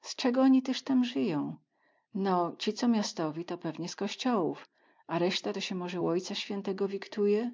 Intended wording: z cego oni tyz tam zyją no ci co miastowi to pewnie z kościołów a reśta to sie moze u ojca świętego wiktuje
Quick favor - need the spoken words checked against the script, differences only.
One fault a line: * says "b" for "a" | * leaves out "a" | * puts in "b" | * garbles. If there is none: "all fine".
all fine